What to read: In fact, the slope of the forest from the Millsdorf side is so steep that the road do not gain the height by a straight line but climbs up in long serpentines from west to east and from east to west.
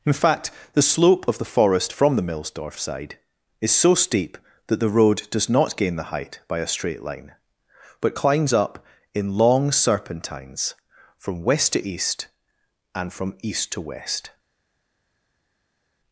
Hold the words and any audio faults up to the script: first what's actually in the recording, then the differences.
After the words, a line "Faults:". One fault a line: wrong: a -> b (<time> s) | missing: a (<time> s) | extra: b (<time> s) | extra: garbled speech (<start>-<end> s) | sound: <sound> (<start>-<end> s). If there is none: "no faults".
In fact, the slope of the forest from the Millsdorf side is so steep that the road does not gain the height by a straight line but climbs up in long serpentines from west to east and from east to west.
Faults:
wrong: do -> does (5.3 s)